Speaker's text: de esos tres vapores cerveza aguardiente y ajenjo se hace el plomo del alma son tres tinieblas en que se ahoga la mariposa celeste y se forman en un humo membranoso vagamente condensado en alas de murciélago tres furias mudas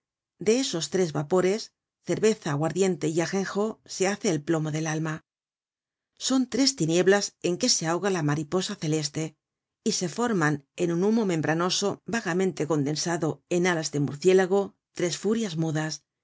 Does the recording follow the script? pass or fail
pass